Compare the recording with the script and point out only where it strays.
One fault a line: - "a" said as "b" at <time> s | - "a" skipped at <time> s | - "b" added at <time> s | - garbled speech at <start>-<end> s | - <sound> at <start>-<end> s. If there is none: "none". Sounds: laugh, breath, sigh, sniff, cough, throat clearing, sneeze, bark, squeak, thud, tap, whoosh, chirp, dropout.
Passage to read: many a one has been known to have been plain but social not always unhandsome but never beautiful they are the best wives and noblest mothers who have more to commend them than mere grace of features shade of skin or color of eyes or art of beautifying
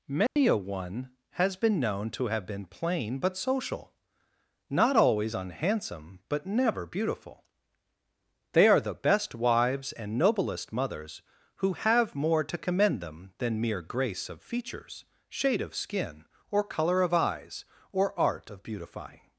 - dropout at 0.3-0.4 s